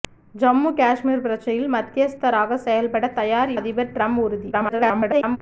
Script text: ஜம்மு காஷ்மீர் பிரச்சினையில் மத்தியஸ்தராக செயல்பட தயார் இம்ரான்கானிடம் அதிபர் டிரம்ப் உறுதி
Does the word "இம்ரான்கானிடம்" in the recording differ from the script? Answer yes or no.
yes